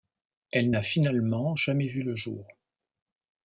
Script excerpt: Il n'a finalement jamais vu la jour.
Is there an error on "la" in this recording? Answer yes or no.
yes